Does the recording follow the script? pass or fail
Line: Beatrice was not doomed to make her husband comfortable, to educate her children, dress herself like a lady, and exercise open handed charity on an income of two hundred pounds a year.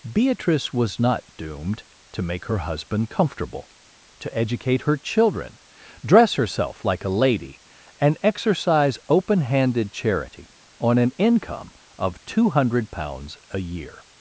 pass